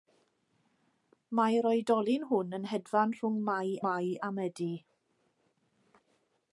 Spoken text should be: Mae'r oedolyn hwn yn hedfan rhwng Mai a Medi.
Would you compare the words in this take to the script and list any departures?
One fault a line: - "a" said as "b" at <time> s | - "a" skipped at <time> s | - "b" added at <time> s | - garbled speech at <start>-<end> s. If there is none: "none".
- "Mai" added at 3.9 s